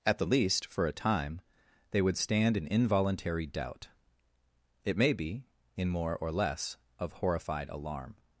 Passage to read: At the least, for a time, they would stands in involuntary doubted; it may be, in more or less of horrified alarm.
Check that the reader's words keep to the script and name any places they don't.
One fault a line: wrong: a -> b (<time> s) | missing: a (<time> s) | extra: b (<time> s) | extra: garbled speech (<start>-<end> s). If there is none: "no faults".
wrong: stands -> stand (2.2 s)
wrong: doubted -> doubt (3.5 s)